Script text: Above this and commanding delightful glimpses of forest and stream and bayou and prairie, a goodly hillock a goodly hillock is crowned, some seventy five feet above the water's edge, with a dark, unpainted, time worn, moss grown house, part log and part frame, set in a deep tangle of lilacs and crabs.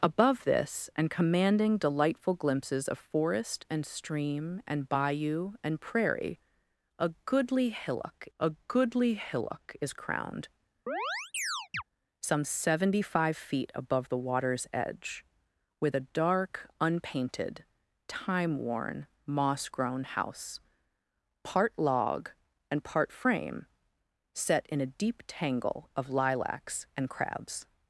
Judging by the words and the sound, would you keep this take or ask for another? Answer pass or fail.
fail